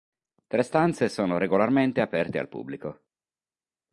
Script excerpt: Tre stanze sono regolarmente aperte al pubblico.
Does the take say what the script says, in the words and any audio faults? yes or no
yes